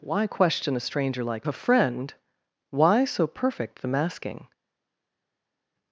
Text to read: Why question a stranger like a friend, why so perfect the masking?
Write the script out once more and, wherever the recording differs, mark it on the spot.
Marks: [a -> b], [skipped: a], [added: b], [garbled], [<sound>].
Why question a stranger like a friend, why so perfect the masking?